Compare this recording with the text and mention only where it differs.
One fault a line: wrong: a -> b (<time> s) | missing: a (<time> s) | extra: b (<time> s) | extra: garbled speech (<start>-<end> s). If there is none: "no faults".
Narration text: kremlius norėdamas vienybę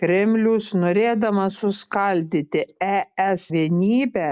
extra: suskaldyti es (1.6 s)